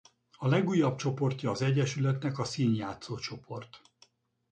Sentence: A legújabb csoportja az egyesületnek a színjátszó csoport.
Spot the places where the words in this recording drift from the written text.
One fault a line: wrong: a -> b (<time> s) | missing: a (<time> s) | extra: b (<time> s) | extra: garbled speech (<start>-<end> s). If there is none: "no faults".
no faults